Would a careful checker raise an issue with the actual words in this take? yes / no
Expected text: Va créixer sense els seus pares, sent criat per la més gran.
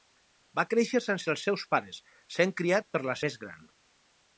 no